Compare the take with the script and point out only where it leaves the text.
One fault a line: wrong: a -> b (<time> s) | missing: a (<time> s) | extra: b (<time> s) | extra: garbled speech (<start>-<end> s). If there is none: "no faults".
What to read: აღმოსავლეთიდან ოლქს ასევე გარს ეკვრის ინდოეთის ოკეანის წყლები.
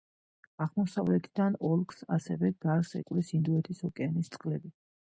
no faults